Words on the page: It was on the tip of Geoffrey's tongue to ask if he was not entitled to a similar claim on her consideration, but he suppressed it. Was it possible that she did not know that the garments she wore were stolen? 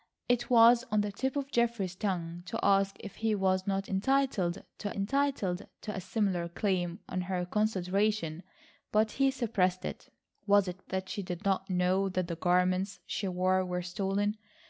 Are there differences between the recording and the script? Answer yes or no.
yes